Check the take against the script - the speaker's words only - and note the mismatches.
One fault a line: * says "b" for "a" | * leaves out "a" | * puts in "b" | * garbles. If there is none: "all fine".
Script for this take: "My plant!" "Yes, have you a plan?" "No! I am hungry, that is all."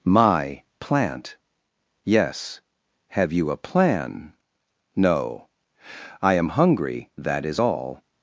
all fine